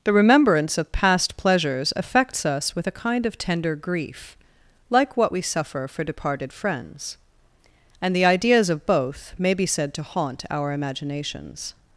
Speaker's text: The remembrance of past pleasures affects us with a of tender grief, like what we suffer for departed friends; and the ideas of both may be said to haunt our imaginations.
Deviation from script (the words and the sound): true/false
true